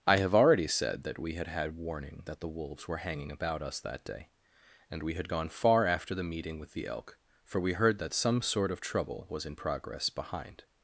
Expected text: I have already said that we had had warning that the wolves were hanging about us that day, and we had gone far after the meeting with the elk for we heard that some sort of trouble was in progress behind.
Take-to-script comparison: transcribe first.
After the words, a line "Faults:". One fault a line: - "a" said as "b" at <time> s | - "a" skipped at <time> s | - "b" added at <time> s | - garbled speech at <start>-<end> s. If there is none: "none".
I have already said that we had had warning that the wolves were hanging about us that day, and we had gone far after the meeting with the elk for we heard that some sort of trouble was in progress behind.
Faults:
none